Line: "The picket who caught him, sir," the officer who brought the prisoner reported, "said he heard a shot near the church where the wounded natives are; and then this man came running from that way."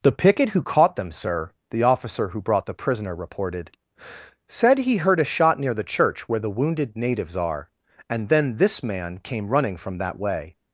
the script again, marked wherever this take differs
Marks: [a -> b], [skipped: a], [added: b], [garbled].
"The picket who caught [him, -> them] sir," the officer who brought the prisoner reported, "said he heard a shot near the church where the wounded natives are; and then this man came running from that way."